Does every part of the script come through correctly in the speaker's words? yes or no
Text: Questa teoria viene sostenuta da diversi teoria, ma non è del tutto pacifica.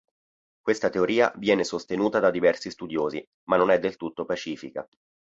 no